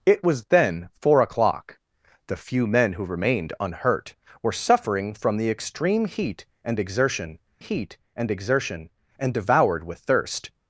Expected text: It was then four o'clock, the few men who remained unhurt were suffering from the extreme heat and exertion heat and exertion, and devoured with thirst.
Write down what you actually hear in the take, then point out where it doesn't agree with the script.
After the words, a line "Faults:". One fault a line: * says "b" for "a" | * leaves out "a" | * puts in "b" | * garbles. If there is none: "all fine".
It was then four o'clock, the few men who remained unhurt were suffering from the extreme heat and exertion heat and exertion, and devoured with thirst.
Faults:
all fine